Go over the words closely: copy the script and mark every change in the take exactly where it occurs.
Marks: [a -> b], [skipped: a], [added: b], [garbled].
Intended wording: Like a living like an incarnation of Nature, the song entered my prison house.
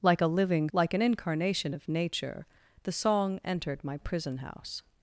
Like a living like an incarnation of Nature, the song entered my prison house.